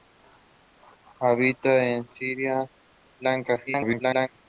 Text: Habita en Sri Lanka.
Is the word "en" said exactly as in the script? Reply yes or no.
yes